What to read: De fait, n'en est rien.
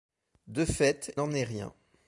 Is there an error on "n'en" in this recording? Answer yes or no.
no